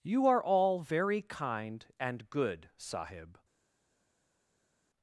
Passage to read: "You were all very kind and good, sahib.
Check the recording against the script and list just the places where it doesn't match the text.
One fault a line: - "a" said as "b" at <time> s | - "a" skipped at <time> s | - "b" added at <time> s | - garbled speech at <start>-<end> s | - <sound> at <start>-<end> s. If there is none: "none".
- "were" said as "are" at 0.2 s